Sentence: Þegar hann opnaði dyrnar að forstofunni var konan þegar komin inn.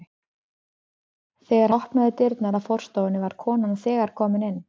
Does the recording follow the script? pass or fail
fail